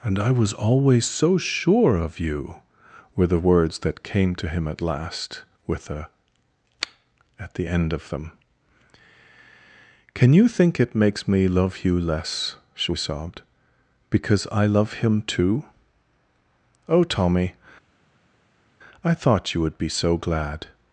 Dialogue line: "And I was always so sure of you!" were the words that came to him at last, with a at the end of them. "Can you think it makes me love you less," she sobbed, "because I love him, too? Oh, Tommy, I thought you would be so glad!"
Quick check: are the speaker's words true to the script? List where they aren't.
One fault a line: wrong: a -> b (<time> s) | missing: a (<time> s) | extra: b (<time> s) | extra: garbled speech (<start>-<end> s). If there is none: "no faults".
no faults